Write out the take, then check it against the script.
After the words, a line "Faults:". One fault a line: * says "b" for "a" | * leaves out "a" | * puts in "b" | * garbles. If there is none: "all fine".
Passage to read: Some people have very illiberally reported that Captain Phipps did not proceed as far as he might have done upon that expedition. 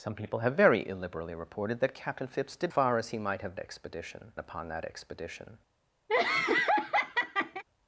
Some people have very illiberally reported that Captain Phipps did far as he might have expedition upon that expedition.
Faults:
* leaves out "not proceed as"
* says "expedition" for "done"